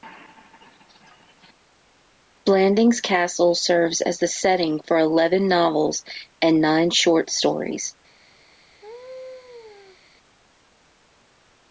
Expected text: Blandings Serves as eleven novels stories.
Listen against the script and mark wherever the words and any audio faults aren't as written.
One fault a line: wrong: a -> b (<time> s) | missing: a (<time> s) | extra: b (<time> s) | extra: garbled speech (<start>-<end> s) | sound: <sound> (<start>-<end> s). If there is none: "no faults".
extra: Castle (3.0 s)
extra: the setting for (4.2 s)
extra: and nine short (6.4 s)
sound: laugh (8.8-10.0 s)